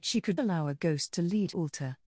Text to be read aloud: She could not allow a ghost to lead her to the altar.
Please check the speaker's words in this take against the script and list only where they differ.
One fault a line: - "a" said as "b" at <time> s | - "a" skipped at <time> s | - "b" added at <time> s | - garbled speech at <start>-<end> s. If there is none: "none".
- "not" skipped at 0.4 s
- "her to the" skipped at 1.5 s